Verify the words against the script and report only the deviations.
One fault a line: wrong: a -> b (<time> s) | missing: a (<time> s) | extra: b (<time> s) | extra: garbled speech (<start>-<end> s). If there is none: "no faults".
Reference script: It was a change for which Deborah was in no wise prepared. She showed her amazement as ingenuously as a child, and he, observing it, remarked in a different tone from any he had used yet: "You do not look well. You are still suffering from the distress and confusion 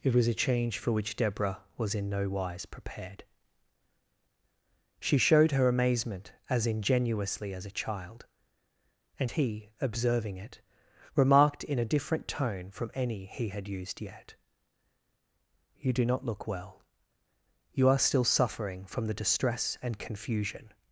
no faults